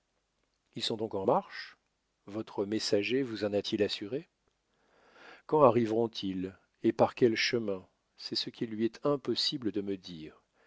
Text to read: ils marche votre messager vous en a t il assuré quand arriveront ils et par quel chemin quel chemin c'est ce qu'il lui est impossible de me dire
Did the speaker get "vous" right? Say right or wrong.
right